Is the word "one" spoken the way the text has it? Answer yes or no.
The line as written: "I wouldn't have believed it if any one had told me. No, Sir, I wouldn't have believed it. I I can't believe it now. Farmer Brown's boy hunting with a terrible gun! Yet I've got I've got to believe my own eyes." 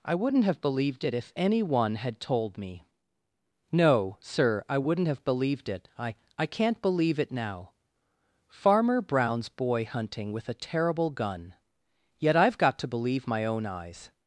yes